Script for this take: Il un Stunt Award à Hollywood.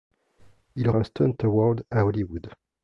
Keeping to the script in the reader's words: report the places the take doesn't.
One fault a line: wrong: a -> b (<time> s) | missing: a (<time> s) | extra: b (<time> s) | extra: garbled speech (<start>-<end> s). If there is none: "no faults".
no faults